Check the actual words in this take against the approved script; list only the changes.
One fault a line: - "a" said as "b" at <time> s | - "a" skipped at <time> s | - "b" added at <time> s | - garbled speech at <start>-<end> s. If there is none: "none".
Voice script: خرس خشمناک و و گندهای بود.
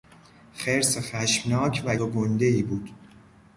none